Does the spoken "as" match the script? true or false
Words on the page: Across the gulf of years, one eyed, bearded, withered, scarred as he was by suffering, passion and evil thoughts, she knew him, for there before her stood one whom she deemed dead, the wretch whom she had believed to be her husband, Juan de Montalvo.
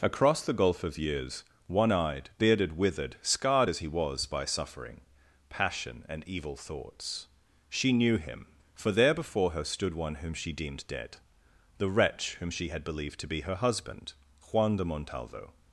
true